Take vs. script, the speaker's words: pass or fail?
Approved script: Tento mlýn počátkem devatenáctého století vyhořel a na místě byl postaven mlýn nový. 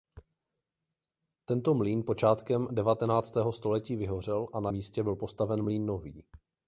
pass